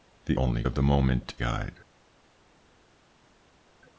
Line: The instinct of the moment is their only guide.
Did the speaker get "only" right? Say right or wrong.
wrong